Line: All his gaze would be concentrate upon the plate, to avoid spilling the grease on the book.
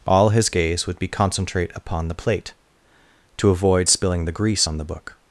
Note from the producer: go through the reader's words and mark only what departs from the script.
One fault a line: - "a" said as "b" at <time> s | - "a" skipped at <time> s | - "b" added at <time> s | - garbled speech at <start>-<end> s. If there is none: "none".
none